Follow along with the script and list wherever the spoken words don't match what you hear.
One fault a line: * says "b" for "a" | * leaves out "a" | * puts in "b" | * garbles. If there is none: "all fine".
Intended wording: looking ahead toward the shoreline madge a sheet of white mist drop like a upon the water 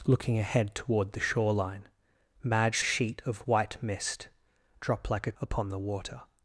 all fine